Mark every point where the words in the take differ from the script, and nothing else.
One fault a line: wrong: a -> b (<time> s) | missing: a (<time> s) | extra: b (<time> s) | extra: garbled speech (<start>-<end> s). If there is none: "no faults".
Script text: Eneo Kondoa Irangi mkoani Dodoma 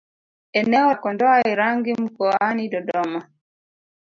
no faults